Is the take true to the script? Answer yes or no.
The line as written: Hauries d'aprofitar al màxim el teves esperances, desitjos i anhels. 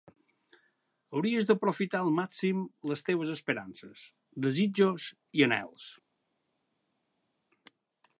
no